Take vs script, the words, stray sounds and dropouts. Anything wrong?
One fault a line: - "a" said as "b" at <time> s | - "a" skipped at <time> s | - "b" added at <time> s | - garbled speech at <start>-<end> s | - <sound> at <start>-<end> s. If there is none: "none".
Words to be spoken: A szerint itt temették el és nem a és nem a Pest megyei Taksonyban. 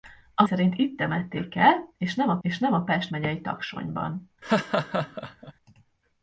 - laugh at 4.4-5.5 s